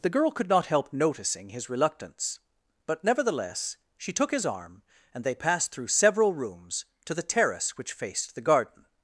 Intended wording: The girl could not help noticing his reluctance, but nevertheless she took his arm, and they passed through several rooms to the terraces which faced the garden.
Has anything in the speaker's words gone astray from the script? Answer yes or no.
yes